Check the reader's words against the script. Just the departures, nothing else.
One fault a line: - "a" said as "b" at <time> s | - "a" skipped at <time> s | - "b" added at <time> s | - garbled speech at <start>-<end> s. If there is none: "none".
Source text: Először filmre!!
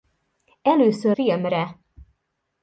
none